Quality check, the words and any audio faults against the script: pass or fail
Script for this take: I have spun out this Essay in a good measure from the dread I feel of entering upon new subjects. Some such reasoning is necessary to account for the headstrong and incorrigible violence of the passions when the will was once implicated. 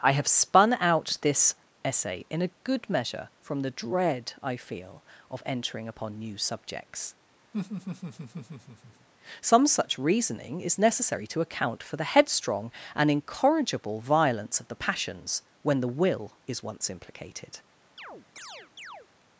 fail